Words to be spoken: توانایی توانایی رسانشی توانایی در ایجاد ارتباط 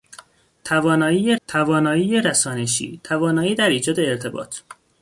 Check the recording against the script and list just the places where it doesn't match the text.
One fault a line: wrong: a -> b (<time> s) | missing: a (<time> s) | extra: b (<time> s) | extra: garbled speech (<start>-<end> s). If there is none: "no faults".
no faults